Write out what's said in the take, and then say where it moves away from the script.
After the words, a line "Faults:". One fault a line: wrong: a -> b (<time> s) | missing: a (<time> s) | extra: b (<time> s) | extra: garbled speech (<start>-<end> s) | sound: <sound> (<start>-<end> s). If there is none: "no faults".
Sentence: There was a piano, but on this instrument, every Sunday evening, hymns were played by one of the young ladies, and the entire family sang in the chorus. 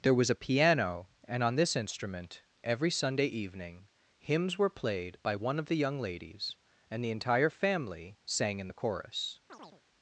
There was a piano, and on this instrument, every Sunday evening, hymns were played by one of the young ladies, and the entire family sang in the chorus.
Faults:
wrong: but -> and (1.3 s)
sound: chirp (9.5-9.8 s)